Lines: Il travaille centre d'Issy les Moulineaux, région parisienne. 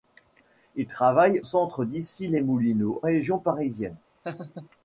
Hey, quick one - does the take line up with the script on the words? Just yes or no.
yes